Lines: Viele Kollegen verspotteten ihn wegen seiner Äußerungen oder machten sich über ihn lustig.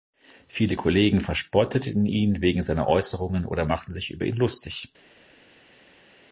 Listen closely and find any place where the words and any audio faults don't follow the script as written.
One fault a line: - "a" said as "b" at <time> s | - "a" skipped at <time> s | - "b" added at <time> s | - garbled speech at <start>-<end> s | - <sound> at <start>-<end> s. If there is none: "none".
none